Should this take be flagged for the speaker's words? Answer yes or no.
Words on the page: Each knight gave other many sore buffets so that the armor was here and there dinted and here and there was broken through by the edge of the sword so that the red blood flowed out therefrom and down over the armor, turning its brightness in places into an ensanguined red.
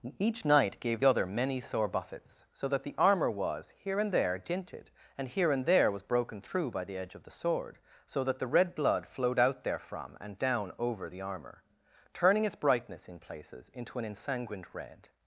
no